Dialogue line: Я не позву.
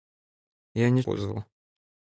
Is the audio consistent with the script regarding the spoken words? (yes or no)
yes